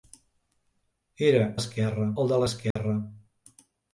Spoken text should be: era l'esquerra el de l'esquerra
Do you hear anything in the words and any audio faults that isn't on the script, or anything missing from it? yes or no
yes